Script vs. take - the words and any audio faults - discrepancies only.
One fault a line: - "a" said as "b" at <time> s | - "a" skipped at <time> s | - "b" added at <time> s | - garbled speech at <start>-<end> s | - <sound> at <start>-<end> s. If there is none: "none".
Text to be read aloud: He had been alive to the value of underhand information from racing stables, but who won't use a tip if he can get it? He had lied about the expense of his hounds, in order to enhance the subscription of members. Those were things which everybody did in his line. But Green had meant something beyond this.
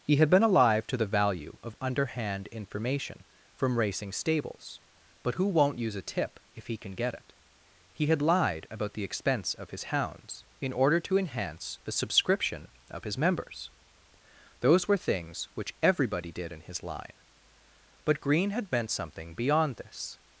- "his" added at 13.0 s